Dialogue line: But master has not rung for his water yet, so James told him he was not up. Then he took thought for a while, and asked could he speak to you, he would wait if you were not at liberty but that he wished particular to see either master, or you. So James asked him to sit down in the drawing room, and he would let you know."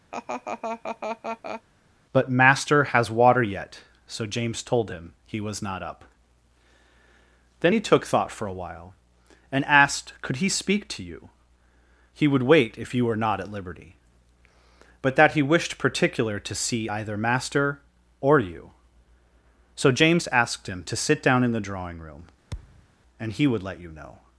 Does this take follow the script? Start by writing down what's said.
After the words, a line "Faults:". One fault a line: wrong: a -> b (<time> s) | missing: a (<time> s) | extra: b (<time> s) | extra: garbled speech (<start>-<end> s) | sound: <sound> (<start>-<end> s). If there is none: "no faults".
But master has water yet, so James told him he was not up. Then he took thought for a while, and asked could he speak to you, he would wait if you were not at liberty but that he wished particular to see either master, or you. So James asked him to sit down in the drawing room, and he would let you know."
Faults:
sound: laugh (0.1-1.6 s)
missing: not rung for his (3.1 s)
sound: thud (22.5-22.9 s)